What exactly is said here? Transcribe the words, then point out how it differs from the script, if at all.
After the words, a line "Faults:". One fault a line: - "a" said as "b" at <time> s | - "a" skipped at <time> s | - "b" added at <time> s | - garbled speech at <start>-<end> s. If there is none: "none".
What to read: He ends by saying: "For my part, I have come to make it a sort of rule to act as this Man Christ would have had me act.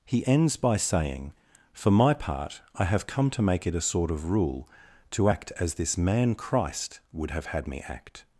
He ends by saying: "For my part, I have come to make it a sort of rule to act as this Man Christ would have had me act.
Faults:
none